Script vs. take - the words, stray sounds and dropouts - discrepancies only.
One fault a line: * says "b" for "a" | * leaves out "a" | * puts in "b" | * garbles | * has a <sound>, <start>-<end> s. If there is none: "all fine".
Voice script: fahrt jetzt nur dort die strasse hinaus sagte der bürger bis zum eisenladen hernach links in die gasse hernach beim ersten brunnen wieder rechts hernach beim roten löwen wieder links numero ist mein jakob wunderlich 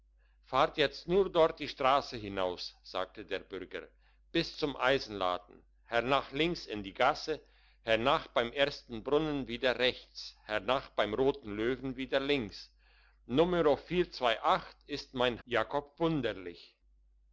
all fine